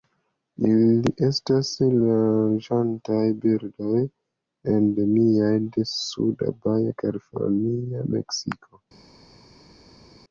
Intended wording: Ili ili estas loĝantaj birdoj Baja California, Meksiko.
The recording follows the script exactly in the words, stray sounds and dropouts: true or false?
false